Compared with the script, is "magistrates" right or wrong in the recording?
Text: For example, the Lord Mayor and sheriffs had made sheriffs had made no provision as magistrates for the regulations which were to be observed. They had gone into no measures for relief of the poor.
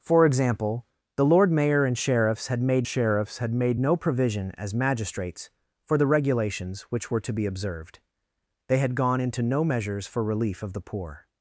right